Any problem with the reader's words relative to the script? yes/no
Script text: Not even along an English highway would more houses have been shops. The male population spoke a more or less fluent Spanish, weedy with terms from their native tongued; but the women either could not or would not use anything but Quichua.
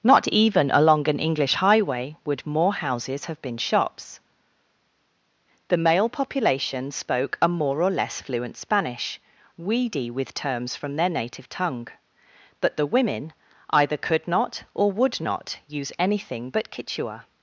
yes